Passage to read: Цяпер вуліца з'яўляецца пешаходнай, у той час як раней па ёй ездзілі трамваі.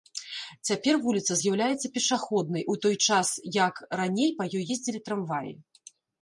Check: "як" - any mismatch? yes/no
no